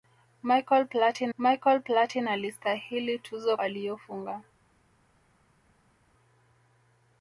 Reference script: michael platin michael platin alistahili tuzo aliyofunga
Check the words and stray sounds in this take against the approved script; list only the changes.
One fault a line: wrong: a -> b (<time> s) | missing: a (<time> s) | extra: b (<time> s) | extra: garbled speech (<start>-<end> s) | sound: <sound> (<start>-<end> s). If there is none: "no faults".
no faults